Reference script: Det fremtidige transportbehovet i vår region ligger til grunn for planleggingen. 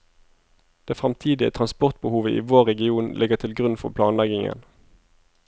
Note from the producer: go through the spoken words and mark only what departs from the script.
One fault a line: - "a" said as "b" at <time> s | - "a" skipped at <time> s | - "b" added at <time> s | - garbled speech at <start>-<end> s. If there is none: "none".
none